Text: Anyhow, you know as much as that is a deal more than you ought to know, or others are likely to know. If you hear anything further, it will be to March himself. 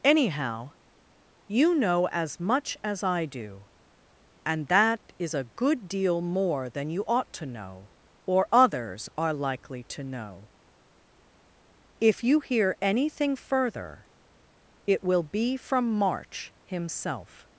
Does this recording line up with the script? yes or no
no